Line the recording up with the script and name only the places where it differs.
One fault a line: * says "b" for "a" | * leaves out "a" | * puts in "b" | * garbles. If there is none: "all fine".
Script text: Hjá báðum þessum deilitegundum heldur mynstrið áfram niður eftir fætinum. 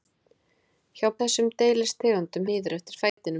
* leaves out "báðum"
* leaves out "heldur mynstrið áfram"